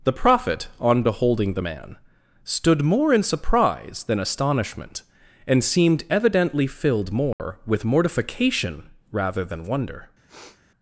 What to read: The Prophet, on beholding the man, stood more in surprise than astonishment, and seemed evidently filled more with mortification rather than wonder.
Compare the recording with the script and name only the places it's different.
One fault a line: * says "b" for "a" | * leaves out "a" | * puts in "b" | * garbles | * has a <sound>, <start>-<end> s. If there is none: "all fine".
* has a dropout, 7.3-7.4 s
* has a sniff, 10.3-10.6 s